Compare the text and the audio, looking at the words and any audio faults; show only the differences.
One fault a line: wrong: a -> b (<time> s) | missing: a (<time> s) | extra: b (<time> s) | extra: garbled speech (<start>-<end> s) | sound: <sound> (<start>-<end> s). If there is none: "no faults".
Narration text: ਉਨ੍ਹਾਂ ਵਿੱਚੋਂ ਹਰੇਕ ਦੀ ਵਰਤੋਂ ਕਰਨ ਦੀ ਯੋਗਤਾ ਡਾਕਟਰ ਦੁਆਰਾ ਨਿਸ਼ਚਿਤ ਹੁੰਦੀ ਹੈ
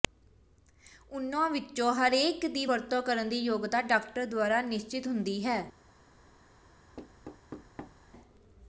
sound: thud (7.0-8.1 s)